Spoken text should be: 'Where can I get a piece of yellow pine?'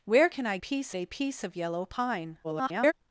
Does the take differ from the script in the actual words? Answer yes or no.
yes